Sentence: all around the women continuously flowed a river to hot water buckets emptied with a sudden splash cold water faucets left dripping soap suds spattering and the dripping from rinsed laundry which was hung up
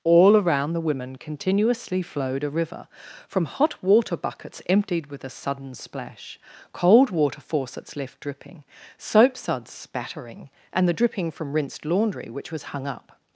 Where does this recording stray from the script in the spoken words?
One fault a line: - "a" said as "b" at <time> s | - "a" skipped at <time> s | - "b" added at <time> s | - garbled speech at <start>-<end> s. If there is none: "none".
- "to" said as "from" at 3.3 s